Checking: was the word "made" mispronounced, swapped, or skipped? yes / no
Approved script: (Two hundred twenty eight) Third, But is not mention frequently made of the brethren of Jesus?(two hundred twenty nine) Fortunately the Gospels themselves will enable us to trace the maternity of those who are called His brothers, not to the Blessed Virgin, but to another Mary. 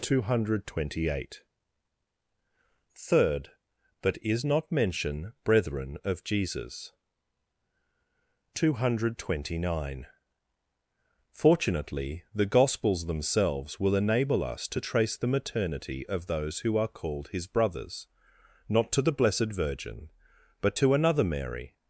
yes